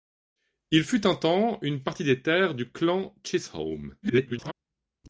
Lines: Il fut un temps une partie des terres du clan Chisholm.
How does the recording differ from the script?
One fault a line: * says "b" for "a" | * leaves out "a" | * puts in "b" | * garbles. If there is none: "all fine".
* garbles